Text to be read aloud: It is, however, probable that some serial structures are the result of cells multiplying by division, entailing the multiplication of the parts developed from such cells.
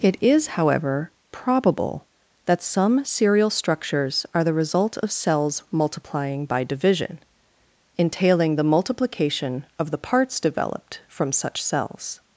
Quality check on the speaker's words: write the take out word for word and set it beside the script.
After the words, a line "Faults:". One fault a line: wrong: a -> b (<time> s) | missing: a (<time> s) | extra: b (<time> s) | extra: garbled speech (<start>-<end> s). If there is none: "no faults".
It is, however, probable that some serial structures are the result of cells multiplying by division, entailing the multiplication of the parts developed from such cells.
Faults:
no faults